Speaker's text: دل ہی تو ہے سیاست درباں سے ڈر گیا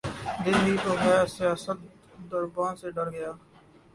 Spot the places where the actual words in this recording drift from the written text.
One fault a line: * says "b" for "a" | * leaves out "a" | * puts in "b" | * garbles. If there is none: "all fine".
all fine